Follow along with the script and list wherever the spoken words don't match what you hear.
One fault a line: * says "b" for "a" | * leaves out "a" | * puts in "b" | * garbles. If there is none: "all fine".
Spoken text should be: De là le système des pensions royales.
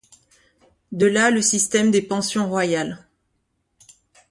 all fine